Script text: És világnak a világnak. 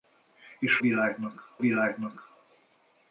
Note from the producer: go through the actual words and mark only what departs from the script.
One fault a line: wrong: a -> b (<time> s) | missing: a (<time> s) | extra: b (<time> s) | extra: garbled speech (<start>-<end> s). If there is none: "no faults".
no faults